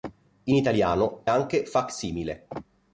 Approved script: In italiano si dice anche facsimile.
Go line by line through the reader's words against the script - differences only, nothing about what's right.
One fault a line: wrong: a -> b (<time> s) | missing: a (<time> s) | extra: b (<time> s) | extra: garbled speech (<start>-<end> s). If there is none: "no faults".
missing: si dice (1.2 s)